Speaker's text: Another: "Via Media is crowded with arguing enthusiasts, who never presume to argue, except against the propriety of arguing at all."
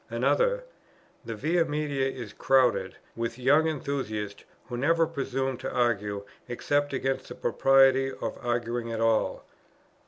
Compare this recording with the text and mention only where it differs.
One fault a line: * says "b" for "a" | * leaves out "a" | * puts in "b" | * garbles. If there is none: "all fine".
* puts in "The"
* says "young" for "arguing"